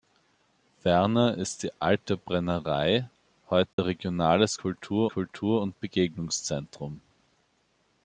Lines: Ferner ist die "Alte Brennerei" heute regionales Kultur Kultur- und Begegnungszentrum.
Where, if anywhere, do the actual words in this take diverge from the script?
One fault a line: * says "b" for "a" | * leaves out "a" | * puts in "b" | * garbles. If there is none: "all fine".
all fine